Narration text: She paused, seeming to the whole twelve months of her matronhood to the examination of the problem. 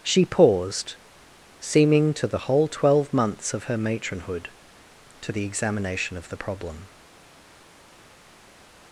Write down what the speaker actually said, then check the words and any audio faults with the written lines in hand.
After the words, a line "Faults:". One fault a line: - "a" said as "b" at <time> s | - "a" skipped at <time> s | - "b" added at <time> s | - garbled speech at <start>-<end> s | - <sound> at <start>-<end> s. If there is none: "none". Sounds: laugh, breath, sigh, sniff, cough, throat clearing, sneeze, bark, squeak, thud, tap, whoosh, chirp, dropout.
She paused, seeming to the whole twelve months of her matronhood to the examination of the problem.
Faults:
none